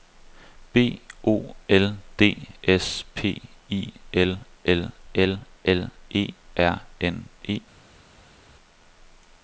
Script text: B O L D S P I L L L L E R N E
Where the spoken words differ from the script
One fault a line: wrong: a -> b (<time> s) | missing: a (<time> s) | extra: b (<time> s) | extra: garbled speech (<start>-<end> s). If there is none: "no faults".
no faults